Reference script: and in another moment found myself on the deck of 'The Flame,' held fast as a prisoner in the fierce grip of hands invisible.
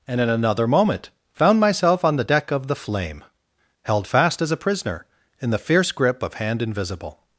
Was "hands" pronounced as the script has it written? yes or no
no